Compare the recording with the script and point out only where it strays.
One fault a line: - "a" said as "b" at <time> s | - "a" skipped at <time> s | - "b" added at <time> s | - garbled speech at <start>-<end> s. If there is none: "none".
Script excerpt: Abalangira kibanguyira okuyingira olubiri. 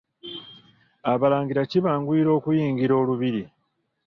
none